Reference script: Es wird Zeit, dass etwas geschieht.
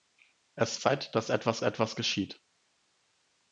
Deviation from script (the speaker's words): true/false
true